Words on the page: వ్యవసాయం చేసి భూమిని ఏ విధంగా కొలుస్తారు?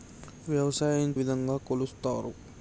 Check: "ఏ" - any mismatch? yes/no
yes